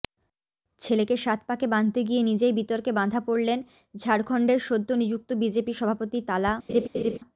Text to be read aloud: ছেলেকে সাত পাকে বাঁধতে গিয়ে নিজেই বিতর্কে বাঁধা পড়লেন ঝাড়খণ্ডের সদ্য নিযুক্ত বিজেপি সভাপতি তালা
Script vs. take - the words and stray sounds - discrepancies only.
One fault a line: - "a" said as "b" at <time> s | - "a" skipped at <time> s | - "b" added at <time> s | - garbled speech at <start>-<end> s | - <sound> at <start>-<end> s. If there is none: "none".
- laugh at 6.7-7.2 s